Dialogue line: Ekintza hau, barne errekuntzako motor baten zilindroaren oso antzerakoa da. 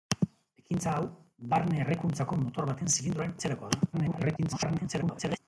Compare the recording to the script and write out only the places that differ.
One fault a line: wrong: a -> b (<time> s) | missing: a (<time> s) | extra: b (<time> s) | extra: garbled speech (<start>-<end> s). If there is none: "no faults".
missing: oso (3.4 s)
extra: garbled speech (3.9-5.4 s)